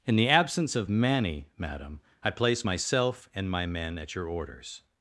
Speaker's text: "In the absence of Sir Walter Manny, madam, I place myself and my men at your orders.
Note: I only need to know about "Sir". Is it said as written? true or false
false